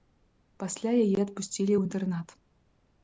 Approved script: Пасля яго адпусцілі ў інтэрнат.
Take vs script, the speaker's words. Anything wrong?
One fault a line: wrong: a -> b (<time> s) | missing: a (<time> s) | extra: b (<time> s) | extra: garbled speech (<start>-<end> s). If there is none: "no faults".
wrong: яго -> яе (1.0 s)